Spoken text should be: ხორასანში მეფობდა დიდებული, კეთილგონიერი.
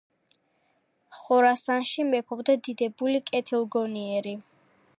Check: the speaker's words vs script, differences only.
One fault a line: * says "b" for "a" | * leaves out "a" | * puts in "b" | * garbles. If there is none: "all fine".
all fine